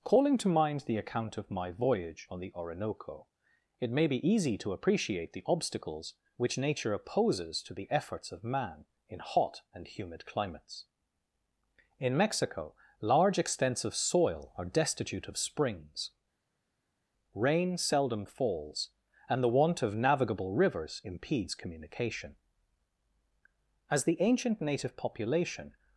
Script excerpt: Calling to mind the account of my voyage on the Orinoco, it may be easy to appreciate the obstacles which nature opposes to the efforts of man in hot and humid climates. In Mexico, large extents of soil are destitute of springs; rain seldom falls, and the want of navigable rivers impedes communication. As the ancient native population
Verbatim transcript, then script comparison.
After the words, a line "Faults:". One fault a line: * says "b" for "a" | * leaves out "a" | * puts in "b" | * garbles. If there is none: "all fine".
Calling to mind the account of my voyage on the Orinoco, it may be easy to appreciate the obstacles which nature opposes to the efforts of man in hot and humid climates. In Mexico, large extents of soil are destitute of springs; rain seldom falls, and the want of navigable rivers impedes communication. As the ancient native population
Faults:
all fine